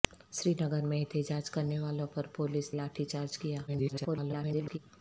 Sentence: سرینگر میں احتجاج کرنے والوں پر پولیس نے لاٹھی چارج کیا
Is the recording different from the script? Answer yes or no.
yes